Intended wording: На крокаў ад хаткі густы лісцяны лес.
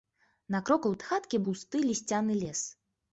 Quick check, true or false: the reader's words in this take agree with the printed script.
true